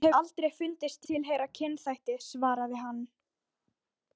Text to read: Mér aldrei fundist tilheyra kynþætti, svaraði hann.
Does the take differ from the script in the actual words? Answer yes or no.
no